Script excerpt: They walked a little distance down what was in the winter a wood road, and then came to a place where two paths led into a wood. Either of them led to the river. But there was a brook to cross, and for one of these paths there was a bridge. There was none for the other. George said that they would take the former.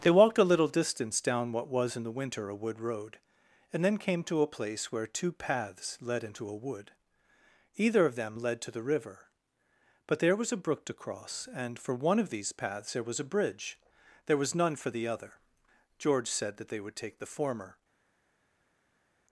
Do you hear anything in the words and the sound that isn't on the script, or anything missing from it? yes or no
no